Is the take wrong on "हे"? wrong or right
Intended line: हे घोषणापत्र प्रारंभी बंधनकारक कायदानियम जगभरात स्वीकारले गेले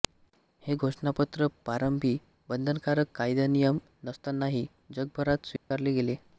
right